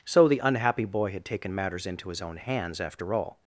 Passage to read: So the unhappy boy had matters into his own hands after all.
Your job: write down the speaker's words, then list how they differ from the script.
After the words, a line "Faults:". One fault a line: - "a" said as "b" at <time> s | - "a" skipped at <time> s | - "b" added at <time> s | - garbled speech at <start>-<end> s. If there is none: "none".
So the unhappy boy had taken matters into his own hands after all.
Faults:
- "taken" added at 1.2 s